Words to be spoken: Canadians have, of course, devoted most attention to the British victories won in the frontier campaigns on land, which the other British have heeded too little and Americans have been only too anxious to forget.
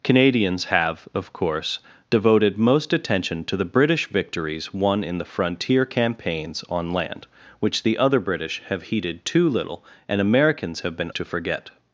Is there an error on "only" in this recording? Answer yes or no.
yes